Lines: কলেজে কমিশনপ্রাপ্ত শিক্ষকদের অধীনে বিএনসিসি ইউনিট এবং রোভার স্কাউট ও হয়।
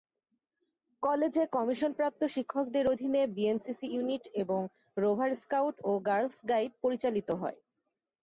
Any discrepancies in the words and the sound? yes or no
yes